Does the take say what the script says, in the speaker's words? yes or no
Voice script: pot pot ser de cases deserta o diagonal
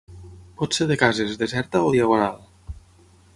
no